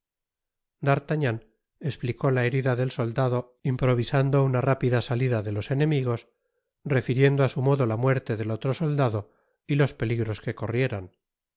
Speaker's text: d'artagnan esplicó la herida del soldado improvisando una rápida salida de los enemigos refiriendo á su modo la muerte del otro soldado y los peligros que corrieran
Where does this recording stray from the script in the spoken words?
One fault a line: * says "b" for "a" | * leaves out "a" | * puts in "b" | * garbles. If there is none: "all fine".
all fine